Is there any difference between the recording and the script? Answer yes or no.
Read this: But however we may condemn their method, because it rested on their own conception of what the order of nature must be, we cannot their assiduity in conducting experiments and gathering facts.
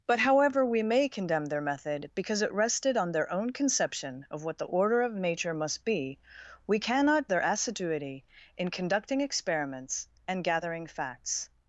no